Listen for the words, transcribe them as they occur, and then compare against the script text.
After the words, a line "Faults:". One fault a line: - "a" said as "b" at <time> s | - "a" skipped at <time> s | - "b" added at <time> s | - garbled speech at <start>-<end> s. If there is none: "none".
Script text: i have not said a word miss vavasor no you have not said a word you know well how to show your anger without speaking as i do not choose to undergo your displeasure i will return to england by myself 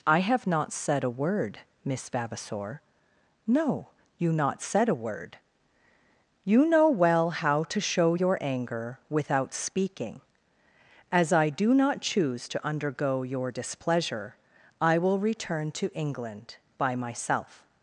i have not said a word miss vavasor no you not said a word you know well how to show your anger without speaking as i do not choose to undergo your displeasure i will return to england by myself
Faults:
- "have" skipped at 4.3 s